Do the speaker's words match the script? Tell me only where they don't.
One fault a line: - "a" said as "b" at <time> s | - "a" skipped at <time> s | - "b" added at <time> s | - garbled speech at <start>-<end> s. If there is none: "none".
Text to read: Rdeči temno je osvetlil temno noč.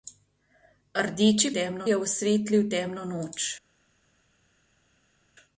none